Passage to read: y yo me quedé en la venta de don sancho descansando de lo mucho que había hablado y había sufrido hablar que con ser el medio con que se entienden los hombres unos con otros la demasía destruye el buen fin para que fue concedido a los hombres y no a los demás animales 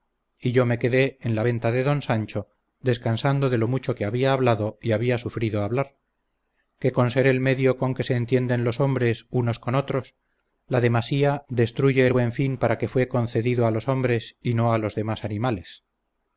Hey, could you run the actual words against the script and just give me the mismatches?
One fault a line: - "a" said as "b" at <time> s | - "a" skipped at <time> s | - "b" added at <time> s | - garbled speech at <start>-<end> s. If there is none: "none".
none